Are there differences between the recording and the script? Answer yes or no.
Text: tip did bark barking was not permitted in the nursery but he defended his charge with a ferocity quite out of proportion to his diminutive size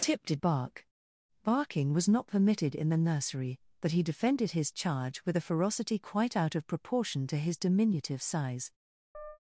no